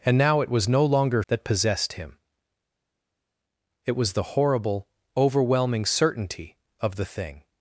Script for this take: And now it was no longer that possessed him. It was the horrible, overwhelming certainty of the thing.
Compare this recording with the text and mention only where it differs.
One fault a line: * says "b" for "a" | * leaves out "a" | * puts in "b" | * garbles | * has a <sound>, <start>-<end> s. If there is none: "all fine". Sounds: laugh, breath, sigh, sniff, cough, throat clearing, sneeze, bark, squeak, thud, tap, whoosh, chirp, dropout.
all fine